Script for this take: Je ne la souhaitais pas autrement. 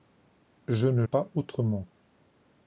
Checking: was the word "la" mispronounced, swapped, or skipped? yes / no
yes